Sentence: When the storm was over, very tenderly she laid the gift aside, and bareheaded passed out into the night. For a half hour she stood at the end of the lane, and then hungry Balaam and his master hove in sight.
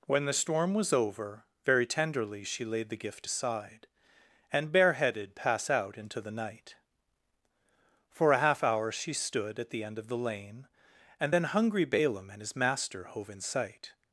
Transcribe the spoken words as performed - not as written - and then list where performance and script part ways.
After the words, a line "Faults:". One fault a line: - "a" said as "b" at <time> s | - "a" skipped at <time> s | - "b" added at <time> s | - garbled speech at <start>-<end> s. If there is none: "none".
When the storm was over, very tenderly she laid the gift aside, and bareheaded pass out into the night. For a half hour she stood at the end of the lane, and then hungry Balaam and his master hove in sight.
Faults:
- "passed" said as "pass" at 5.3 s